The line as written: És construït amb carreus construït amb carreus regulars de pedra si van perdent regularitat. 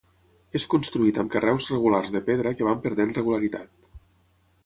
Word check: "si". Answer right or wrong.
wrong